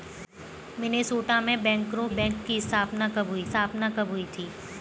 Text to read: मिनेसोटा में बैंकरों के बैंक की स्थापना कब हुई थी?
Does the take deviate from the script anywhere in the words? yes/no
yes